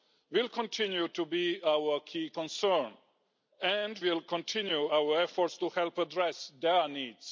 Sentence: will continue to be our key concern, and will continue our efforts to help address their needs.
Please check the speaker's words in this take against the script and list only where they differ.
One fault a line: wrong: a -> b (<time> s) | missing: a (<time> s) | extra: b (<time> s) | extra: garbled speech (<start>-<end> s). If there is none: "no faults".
no faults